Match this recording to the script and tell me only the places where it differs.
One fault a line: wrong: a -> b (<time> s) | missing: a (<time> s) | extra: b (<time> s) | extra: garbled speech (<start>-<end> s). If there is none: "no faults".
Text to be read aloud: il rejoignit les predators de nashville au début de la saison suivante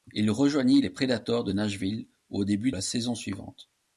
missing: de (2.7 s)